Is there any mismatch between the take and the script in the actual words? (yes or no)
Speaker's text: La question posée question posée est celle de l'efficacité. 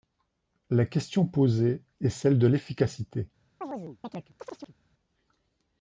yes